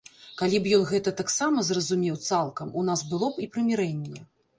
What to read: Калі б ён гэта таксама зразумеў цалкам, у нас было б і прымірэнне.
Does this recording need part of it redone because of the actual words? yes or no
no